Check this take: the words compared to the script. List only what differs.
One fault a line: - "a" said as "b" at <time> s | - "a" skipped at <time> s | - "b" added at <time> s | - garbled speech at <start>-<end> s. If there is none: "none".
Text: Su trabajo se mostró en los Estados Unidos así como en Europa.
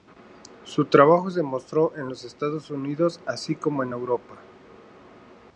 none